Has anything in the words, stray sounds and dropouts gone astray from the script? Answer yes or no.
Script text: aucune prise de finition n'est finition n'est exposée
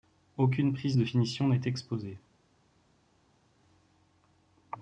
yes